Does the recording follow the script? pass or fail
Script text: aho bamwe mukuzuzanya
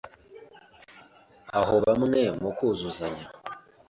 pass